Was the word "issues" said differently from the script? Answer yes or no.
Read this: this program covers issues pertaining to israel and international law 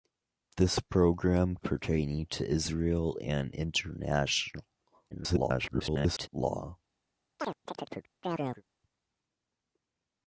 yes